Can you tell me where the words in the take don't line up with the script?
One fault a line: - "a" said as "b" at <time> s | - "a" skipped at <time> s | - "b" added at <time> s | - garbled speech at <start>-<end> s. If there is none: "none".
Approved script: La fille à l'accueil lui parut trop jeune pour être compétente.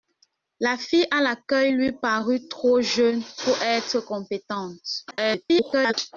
- garbled speech at 5.1-5.9 s